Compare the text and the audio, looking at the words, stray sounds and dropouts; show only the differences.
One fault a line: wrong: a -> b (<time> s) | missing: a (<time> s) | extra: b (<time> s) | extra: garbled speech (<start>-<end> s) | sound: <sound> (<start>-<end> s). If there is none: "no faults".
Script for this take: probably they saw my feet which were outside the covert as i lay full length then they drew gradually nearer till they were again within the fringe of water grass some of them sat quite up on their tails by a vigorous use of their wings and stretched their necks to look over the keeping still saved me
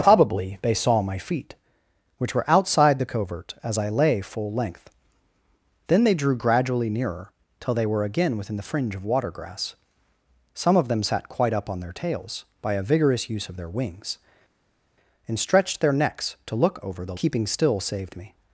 no faults